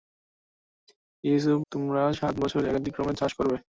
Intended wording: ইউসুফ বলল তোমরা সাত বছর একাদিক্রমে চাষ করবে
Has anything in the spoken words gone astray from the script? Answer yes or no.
yes